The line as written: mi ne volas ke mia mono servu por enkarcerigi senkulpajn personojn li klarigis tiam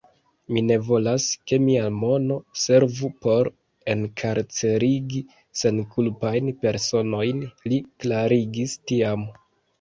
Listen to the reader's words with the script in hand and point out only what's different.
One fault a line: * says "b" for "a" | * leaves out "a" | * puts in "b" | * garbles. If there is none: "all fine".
all fine